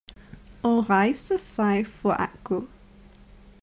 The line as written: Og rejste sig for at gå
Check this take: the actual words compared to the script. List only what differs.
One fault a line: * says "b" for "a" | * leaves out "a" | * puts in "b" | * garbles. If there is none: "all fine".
all fine